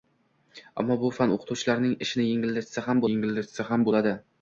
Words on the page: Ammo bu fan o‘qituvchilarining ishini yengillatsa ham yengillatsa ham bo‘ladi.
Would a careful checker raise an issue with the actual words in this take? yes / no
no